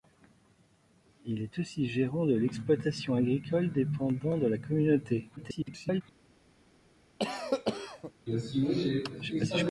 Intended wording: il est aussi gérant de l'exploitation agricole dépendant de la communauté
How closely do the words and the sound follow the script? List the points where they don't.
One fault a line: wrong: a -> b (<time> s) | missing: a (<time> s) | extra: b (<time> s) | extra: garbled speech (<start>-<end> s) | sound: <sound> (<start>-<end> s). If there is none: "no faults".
extra: garbled speech (5.4-6.0 s)
sound: cough (7.2-8.1 s)